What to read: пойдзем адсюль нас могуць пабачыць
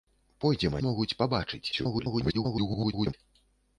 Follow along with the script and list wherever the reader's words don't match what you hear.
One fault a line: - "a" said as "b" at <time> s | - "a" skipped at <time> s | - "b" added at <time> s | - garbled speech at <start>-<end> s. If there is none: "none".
- "адсюль нас" skipped at 0.8 s
- garbled speech at 1.7-3.1 s